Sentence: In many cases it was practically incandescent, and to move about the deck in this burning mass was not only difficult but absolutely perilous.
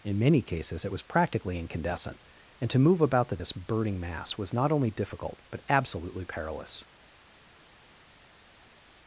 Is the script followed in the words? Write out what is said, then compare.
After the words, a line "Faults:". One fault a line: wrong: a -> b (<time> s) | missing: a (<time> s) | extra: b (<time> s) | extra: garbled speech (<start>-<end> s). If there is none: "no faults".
In many cases it was practically incandescent, and to move about the this burning mass was not only difficult but absolutely perilous.
Faults:
missing: deck in (3.4 s)